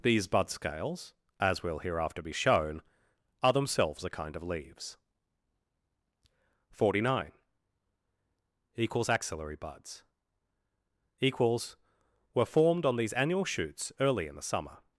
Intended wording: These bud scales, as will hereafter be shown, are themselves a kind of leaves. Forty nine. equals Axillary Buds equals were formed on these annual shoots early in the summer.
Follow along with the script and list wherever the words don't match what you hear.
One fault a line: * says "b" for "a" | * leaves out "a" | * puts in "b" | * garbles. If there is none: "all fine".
all fine